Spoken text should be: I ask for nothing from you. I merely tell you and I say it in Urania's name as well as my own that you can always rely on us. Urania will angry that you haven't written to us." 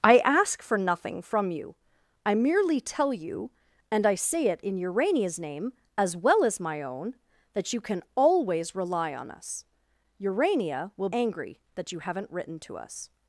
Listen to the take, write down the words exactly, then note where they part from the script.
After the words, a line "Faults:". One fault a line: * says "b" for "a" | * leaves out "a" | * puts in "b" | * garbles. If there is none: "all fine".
I ask for nothing from you. I merely tell you and I say it in Urania's name as well as my own that you can always rely on us. Urania will angry that you haven't written to us."
Faults:
all fine